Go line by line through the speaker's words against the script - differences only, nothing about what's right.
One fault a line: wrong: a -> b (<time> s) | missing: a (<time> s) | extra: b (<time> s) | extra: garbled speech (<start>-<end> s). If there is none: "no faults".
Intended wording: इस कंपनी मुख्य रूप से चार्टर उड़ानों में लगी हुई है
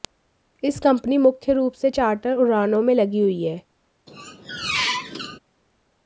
no faults